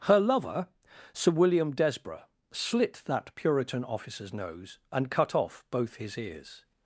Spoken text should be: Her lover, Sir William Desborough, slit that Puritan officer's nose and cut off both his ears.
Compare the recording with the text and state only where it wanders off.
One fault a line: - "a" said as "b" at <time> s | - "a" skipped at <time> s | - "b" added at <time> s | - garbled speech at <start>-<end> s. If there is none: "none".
none